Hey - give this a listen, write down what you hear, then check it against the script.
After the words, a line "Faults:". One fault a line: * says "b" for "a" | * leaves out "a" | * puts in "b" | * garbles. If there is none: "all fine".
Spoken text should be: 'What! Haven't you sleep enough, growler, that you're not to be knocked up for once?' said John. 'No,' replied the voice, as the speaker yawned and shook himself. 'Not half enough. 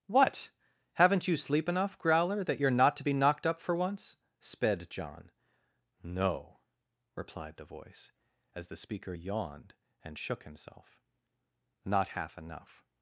'What! Haven't you sleep enough, growler, that you're not to be knocked up for once?' sped John. 'No,' replied the voice, as the speaker yawned and shook himself. 'Not half enough.
Faults:
* says "sped" for "said"